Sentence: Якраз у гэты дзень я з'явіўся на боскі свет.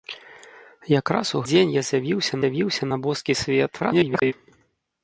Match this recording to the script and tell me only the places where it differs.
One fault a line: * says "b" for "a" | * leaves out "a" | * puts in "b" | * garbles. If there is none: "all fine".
* leaves out "гэты"
* puts in "з'явіўся"
* garbles